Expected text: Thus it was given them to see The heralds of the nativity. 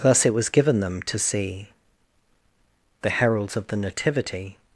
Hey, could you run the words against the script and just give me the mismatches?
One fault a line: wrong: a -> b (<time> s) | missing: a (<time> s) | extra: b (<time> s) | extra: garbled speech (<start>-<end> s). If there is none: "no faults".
no faults